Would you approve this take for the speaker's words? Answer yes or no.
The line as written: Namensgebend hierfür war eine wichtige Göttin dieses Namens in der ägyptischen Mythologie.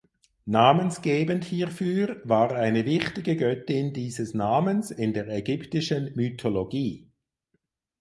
yes